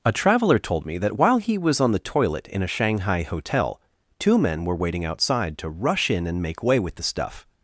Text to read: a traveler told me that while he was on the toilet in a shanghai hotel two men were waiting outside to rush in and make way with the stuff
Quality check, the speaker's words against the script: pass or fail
pass